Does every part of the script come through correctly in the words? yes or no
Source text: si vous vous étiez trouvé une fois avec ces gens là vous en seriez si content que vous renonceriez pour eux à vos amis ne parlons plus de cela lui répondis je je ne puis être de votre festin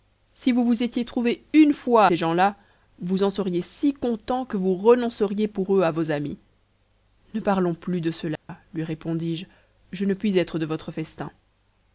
no